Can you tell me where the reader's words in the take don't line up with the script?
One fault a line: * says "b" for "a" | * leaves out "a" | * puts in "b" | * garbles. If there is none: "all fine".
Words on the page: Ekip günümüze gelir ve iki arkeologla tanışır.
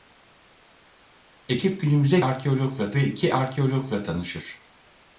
* says "arkeologla" for "gelir"